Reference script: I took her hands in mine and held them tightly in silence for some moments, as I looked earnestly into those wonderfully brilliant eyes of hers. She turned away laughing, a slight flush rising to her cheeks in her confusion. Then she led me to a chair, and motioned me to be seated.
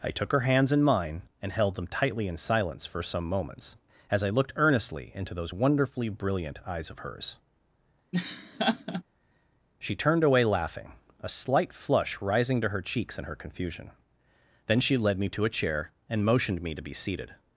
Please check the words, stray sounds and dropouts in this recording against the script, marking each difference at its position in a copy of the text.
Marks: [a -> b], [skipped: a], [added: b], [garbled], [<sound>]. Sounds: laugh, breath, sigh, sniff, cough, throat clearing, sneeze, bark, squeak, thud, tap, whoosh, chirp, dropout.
I took her hands in mine and held them tightly in silence for some moments, as I looked earnestly into those wonderfully brilliant eyes of hers. [laugh] She turned away laughing, a slight flush rising to her cheeks in her confusion. Then she led me to a chair, and motioned me to be seated.